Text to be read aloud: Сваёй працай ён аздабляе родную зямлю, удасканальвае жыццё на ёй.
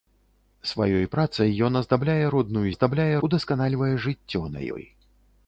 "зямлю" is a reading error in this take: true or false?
true